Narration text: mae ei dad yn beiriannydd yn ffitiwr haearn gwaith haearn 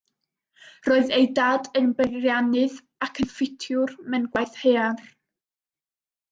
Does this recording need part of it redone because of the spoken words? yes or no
yes